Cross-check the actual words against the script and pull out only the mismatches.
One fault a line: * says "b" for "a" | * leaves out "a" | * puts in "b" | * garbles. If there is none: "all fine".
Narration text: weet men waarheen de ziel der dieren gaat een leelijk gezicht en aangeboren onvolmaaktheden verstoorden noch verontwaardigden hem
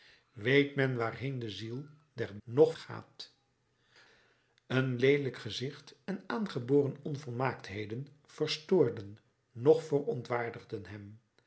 * says "noch" for "dieren"